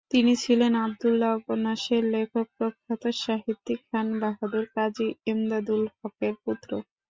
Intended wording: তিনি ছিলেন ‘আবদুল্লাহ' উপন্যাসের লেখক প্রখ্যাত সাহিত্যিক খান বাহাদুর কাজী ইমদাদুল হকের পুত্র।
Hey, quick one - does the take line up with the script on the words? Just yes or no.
yes